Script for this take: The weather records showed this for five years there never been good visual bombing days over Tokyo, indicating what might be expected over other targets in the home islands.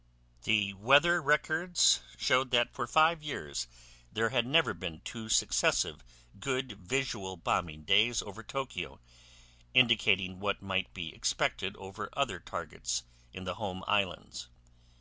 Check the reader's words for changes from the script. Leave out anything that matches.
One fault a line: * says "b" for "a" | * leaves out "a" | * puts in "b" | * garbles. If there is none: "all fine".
* says "that" for "this"
* puts in "had"
* puts in "two successive"